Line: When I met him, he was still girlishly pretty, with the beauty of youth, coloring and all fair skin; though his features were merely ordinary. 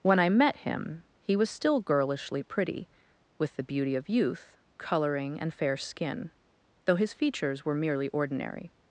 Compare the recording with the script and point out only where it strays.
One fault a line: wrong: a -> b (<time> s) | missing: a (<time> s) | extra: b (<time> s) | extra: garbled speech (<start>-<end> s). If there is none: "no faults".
missing: all (5.5 s)